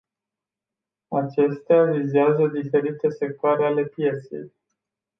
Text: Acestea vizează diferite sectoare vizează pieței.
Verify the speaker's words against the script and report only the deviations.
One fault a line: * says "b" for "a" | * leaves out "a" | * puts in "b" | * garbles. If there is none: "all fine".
* says "ale" for "vizează"